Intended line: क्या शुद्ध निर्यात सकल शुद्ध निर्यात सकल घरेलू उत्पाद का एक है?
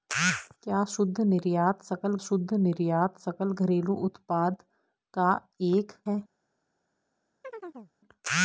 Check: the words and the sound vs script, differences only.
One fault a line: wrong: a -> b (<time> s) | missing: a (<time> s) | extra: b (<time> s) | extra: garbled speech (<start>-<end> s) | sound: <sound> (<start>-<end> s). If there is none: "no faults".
sound: chirp (7.4-7.9 s)